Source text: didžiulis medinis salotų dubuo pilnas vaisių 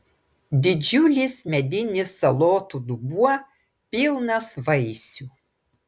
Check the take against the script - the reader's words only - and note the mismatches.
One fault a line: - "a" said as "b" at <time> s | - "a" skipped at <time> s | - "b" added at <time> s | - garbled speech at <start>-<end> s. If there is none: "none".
none